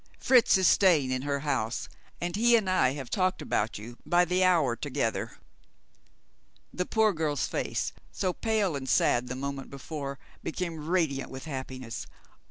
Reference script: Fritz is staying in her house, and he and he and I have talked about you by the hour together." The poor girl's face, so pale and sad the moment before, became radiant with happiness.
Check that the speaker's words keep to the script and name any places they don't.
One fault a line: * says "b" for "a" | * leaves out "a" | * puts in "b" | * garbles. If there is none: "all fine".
* leaves out "he and"